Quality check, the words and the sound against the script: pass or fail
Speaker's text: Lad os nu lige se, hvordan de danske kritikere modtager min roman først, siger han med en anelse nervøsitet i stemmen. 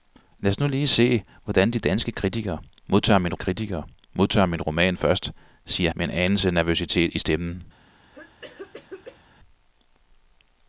fail